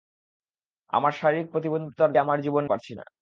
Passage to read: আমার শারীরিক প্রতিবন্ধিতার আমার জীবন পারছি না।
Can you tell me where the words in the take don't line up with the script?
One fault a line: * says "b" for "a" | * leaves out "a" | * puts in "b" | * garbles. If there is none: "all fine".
all fine